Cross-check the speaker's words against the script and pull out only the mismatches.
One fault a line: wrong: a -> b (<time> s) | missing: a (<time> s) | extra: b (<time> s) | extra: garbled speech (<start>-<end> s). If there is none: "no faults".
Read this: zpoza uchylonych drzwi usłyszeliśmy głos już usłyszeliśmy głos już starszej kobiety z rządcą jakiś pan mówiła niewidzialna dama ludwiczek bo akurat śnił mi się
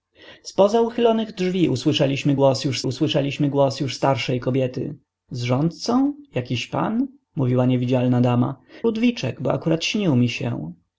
no faults